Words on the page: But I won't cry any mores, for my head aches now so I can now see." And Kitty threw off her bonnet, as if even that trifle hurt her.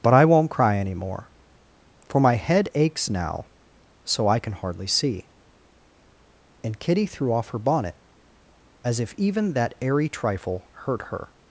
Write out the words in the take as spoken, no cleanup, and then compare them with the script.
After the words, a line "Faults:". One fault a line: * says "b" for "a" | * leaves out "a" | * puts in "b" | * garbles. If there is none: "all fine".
But I won't cry any more, for my head aches now so I can hardly see." And Kitty threw off her bonnet, as if even that airy trifle hurt her.
Faults:
* says "more" for "mores"
* says "hardly" for "now"
* puts in "airy"